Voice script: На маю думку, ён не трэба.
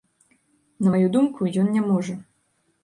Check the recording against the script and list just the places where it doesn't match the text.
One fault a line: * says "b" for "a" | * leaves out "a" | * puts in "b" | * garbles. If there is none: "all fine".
* says "можа" for "трэба"